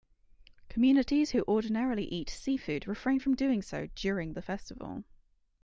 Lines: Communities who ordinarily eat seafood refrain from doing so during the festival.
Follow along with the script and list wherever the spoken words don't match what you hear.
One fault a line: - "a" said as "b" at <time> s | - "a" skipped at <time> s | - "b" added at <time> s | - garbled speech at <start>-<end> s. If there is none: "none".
none